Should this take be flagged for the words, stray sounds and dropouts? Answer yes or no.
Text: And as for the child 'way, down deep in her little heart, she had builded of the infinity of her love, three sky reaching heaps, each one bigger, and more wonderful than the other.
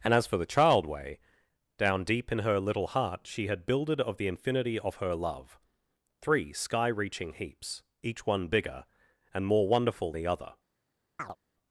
yes